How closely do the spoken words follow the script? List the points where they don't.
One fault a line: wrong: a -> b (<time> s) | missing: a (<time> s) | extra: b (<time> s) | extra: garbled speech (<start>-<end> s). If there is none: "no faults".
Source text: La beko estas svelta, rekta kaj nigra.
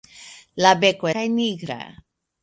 missing: estas svelta rekta (1.1 s)